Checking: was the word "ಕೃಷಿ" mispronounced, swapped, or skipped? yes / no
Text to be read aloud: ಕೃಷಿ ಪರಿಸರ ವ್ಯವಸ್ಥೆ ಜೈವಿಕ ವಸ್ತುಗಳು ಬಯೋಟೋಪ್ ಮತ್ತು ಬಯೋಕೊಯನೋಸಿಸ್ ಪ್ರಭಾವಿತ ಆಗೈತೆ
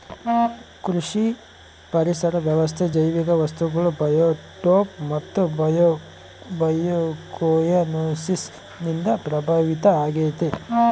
no